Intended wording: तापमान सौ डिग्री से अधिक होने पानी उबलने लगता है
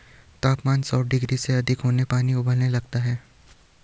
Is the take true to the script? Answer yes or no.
yes